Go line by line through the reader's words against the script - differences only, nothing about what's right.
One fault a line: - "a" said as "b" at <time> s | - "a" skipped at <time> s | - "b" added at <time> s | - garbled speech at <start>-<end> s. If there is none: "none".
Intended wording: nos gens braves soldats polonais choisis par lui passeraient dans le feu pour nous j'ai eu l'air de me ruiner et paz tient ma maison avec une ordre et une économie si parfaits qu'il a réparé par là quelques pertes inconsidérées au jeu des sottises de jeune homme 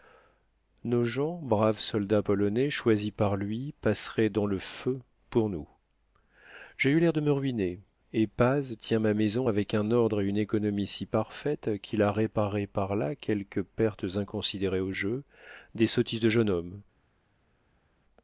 - "une" said as "un" at 9.7 s